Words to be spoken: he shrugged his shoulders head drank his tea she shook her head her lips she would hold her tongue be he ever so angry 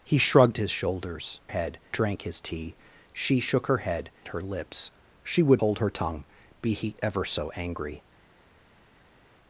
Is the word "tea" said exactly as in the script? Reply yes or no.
yes